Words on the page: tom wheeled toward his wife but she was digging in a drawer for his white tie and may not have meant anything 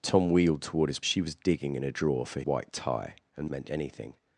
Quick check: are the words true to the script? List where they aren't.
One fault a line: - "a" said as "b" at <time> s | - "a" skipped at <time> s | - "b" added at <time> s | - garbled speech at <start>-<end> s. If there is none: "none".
- "wife but" skipped at 1.0 s
- "his" skipped at 2.4 s
- "may not have" skipped at 3.5 s